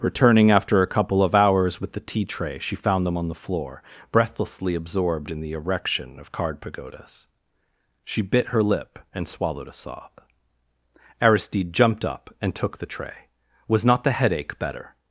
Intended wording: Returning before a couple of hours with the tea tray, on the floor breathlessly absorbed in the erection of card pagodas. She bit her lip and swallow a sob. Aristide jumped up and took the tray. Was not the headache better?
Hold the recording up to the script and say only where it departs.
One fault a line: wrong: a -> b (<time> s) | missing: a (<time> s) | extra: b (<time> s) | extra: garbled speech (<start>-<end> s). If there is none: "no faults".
wrong: before -> after (0.5 s)
extra: she found them (2.6 s)
wrong: swallow -> swallowed (9.3 s)